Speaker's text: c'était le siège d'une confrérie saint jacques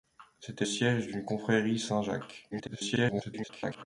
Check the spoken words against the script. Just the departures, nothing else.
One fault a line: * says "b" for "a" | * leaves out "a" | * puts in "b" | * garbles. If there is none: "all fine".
* leaves out "le"
* garbles